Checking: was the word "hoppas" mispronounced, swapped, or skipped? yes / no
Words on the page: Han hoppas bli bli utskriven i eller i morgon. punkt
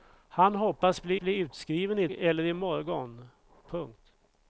no